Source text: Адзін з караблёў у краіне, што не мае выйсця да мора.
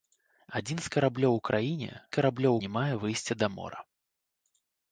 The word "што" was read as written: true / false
false